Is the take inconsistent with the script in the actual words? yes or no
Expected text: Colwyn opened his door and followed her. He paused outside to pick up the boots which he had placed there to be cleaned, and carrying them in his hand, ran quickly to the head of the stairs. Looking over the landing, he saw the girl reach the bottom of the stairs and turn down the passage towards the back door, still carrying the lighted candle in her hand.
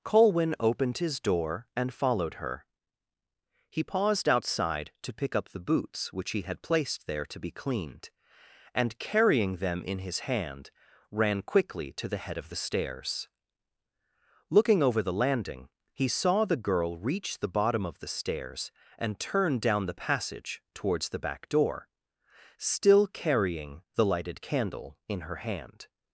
no